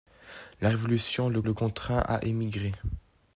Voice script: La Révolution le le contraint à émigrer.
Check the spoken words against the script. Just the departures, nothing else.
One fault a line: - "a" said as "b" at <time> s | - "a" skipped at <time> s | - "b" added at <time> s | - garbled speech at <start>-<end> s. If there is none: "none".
none